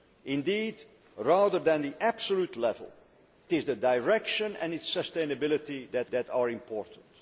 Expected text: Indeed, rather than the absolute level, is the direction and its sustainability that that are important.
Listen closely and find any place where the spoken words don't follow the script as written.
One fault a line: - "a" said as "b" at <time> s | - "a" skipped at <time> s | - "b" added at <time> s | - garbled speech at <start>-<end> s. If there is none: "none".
none